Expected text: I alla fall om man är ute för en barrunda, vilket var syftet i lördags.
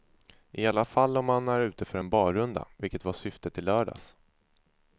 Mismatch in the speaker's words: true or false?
false